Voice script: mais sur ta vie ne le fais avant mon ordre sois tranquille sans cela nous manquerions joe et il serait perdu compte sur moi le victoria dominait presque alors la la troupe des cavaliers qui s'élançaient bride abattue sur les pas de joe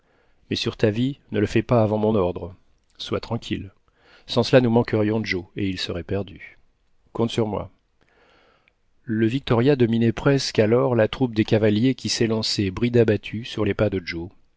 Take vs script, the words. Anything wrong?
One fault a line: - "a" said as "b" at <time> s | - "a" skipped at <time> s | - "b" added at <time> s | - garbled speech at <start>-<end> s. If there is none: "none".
- "pas" added at 1.6 s
- "la" skipped at 11.1 s